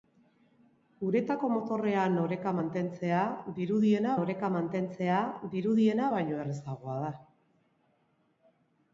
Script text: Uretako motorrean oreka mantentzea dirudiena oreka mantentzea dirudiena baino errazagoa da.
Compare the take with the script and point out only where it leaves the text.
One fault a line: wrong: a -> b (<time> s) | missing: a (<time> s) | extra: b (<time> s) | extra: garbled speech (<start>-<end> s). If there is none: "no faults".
no faults